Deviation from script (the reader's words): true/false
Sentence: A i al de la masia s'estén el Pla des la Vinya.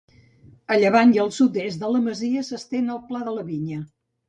true